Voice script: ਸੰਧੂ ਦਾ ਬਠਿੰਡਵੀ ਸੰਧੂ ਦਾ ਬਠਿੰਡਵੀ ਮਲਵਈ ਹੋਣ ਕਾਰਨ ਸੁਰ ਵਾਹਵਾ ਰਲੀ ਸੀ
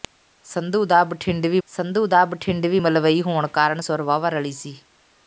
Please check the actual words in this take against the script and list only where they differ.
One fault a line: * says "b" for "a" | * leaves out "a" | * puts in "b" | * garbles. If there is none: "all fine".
all fine